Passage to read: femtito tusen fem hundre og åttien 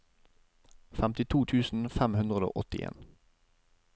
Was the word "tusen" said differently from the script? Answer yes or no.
no